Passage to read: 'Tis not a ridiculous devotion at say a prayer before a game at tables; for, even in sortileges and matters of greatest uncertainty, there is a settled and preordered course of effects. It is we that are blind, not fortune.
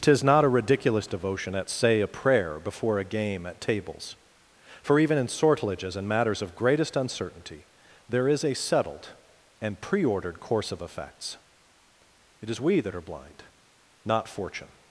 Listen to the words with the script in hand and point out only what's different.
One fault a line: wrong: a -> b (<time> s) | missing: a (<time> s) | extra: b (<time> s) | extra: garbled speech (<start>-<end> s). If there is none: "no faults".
no faults